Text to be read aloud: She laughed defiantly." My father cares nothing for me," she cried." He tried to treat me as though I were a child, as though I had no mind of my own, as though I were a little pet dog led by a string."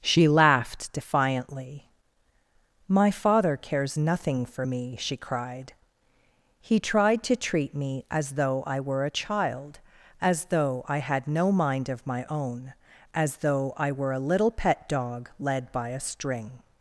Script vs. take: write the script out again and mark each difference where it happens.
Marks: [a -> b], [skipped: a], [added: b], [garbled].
She laughed defiantly." My father cares nothing for me," she cried." He tried to treat me as though I were a child, as though I had no mind of my own, as though I were a little pet dog led by a string."